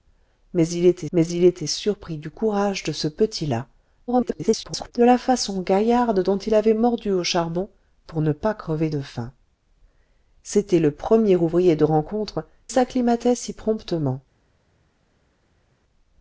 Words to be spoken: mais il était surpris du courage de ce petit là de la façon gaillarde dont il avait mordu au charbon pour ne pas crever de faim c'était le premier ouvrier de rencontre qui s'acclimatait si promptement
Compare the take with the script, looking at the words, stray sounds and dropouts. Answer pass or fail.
fail